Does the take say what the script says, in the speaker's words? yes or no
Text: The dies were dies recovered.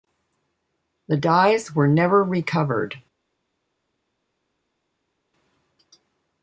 no